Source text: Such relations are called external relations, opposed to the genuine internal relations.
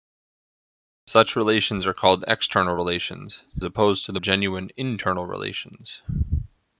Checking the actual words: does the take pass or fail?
pass